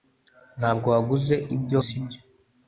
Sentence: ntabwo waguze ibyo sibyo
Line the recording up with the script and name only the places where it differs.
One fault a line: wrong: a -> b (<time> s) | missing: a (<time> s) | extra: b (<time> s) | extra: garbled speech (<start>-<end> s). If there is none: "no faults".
no faults